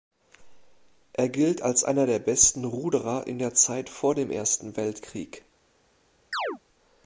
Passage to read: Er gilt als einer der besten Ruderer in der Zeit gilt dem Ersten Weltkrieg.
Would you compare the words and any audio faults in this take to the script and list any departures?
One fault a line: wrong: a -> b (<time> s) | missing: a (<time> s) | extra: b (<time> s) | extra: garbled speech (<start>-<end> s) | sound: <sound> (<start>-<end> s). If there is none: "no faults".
wrong: gilt -> vor (3.9 s)
sound: chirp (6.3-6.6 s)